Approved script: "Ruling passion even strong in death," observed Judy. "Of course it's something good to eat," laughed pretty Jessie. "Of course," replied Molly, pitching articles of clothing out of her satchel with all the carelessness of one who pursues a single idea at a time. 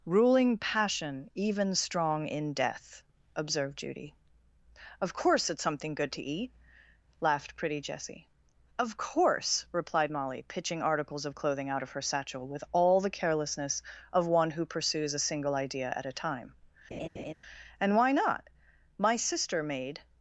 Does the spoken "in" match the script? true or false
true